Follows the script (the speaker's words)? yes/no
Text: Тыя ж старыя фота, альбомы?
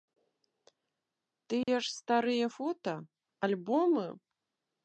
yes